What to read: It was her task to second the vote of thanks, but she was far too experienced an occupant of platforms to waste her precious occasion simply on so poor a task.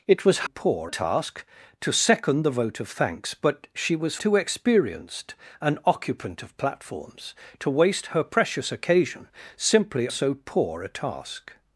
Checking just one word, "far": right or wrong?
wrong